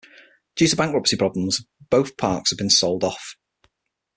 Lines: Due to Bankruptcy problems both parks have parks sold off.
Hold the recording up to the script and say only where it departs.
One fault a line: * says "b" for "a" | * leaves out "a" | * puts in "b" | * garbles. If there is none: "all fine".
* says "been" for "parks"